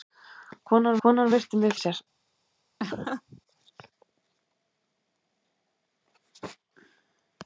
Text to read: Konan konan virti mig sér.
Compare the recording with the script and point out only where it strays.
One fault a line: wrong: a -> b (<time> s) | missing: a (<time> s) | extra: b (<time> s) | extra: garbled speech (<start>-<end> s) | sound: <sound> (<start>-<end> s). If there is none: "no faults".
sound: laugh (2.8-3.4 s)